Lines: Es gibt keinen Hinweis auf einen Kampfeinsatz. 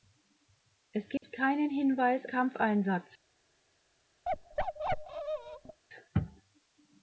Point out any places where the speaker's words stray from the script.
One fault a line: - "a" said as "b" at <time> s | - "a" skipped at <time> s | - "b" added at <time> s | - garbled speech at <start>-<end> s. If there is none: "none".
- "auf einen" skipped at 2.2 s